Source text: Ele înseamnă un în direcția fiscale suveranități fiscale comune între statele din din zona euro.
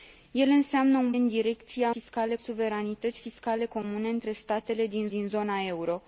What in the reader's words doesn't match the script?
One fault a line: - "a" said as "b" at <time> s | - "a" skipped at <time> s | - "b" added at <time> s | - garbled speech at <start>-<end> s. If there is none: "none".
none